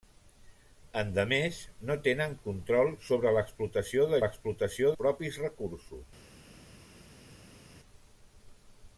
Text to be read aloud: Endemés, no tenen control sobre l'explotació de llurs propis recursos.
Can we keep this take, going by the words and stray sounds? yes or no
no